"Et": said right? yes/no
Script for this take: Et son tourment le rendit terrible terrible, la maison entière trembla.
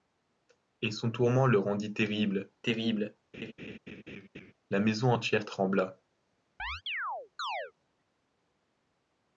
yes